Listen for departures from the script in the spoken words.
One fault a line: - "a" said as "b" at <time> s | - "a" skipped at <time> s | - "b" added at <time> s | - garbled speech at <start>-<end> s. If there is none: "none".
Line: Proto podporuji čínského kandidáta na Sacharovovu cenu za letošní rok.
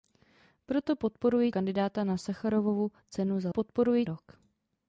- "čínského" skipped at 1.5 s
- "letošní" said as "podporuji" at 3.5 s